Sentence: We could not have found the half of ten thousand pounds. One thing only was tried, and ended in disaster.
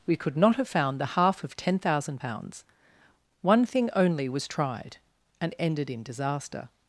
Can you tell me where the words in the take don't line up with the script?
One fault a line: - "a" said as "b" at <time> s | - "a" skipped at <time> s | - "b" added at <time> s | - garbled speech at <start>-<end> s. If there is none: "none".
none